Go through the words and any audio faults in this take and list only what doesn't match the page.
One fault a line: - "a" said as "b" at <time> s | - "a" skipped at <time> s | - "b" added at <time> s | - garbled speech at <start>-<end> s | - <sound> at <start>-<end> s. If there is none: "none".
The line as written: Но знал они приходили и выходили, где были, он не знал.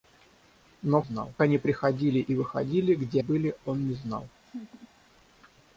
- laugh at 4.4-4.9 s